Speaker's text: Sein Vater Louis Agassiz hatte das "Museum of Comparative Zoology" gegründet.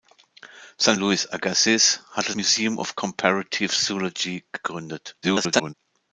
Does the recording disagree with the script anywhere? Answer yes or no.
yes